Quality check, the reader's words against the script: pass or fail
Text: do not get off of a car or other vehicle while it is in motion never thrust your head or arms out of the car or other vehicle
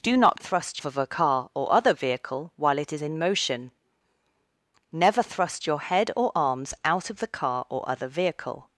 fail